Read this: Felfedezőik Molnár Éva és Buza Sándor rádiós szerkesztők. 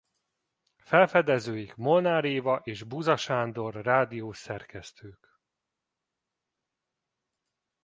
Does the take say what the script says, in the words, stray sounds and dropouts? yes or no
yes